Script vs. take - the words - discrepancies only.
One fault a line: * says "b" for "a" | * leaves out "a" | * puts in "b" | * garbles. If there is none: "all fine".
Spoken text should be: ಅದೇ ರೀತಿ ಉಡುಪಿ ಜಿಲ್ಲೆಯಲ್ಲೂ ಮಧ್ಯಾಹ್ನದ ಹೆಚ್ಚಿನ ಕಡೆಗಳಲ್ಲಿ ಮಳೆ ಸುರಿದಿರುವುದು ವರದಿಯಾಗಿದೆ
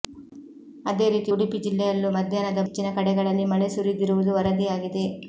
all fine